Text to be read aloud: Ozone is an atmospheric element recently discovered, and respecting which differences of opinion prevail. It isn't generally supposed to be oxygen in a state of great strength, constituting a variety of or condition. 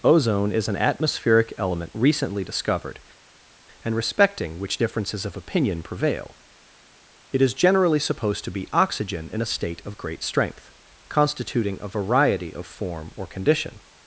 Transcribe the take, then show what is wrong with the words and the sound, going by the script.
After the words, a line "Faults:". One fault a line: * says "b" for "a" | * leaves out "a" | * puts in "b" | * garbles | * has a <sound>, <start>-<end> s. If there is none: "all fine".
Ozone is an atmospheric element recently discovered, and respecting which differences of opinion prevail. It is generally supposed to be oxygen in a state of great strength, constituting a variety of form or condition.
Faults:
* says "is" for "isn't"
* puts in "form"